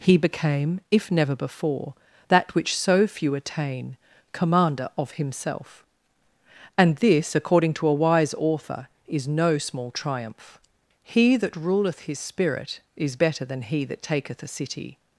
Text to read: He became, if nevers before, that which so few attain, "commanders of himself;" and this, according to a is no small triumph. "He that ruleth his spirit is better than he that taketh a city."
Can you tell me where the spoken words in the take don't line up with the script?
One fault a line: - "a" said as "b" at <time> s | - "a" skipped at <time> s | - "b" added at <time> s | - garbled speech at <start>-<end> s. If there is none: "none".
- "nevers" said as "never" at 1.1 s
- "commanders" said as "commander" at 4.3 s
- "wise author" added at 7.9 s